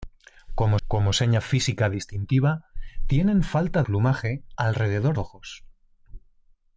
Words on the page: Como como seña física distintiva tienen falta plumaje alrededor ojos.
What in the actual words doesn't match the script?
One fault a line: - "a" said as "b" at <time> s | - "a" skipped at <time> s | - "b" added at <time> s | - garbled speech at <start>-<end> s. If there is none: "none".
none